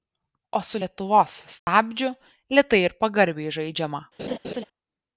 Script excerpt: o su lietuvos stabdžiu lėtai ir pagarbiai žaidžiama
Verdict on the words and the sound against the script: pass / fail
fail